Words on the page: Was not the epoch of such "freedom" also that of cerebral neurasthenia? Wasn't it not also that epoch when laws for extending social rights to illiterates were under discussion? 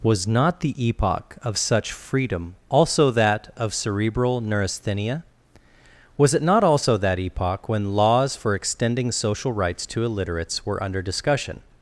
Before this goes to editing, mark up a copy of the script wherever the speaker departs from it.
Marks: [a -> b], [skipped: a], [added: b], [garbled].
Was not the epoch of such "freedom" also that of cerebral neurasthenia? [Wasn't -> Was] it not also that epoch when laws for extending social rights to illiterates were under discussion?